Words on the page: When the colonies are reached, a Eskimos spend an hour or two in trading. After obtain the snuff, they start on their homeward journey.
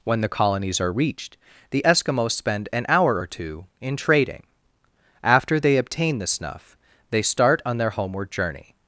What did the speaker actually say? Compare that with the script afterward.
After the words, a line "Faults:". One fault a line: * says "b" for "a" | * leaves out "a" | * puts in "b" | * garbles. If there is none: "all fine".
When the colonies are reached, the Eskimos spend an hour or two in trading. After they obtain the snuff, they start on their homeward journey.
Faults:
* says "the" for "a"
* puts in "they"